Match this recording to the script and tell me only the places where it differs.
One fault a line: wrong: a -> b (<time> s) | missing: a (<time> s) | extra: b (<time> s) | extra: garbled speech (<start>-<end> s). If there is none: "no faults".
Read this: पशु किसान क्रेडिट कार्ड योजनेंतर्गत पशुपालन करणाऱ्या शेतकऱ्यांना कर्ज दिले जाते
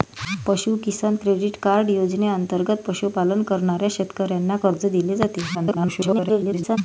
extra: garbled speech (5.5-6.8 s)